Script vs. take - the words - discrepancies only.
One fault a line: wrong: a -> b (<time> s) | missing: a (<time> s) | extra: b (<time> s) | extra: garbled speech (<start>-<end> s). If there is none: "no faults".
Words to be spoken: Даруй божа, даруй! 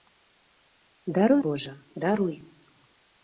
no faults